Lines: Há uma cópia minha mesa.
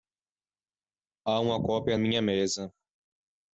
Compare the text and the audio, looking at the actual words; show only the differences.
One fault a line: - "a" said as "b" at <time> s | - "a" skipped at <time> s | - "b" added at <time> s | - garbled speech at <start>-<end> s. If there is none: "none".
none